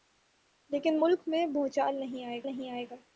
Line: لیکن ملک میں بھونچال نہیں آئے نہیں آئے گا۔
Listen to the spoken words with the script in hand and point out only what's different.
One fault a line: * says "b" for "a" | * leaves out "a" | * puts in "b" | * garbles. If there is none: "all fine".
all fine